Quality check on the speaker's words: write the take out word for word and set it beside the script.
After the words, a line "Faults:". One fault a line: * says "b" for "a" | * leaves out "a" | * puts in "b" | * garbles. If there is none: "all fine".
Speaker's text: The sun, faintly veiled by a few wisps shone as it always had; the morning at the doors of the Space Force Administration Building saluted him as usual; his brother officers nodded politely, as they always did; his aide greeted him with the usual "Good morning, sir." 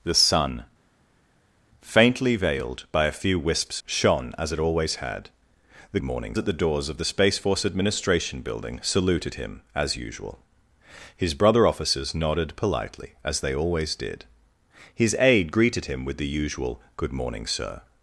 The sun, faintly veiled by a few wisps shone as it always had; the morning at the doors of the Space Force Administration Building saluted him as usual; his brother officers nodded politely, as they always did; his aide greeted him with the usual "Good morning, sir."
Faults:
all fine